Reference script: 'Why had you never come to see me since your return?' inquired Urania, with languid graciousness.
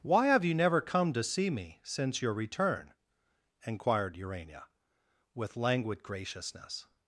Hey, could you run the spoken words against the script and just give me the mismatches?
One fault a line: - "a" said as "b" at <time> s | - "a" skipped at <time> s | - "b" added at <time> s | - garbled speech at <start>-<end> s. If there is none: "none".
- "had" said as "have" at 0.3 s